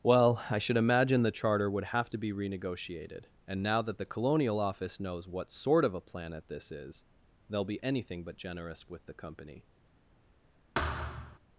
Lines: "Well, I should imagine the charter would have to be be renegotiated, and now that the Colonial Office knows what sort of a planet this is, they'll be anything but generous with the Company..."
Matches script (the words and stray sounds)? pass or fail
fail